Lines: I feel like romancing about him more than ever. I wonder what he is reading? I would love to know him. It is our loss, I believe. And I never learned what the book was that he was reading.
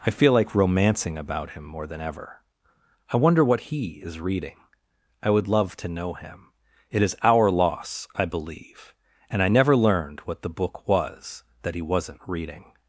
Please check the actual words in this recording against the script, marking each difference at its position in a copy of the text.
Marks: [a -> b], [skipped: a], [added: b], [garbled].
I feel like romancing about him more than ever. I wonder what he is reading? I would love to know him. It is our loss, I believe. And I never learned what the book was that he [was -> wasn't] reading.